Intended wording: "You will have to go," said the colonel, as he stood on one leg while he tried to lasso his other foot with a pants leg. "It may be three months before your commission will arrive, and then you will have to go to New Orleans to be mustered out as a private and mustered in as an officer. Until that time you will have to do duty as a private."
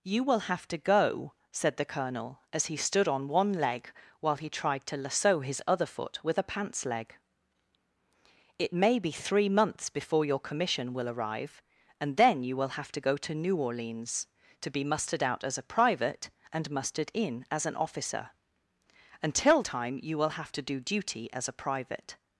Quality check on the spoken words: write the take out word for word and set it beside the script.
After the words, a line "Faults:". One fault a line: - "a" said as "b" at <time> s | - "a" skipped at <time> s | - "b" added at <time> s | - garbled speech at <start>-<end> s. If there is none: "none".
"You will have to go," said the colonel, as he stood on one leg while he tried to lasso his other foot with a pants leg. "It may be three months before your commission will arrive, and then you will have to go to New Orleans to be mustered out as a private and mustered in as an officer. Until time you will have to do duty as a private."
Faults:
- "that" skipped at 19.6 s